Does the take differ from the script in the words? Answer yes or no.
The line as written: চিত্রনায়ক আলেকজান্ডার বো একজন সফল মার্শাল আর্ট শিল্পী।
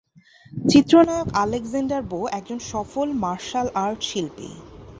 no